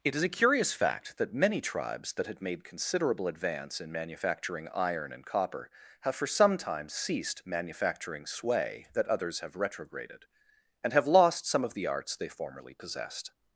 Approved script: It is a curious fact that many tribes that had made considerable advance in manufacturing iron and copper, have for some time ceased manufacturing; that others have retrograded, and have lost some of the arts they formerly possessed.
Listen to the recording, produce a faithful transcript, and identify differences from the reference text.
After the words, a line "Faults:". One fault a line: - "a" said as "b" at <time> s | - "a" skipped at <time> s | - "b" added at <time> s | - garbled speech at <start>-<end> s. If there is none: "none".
It is a curious fact that many tribes that had made considerable advance in manufacturing iron and copper, have for some time ceased manufacturing; sway that others have retrograded, and have lost some of the arts they formerly possessed.
Faults:
- "sway" added at 8.2 s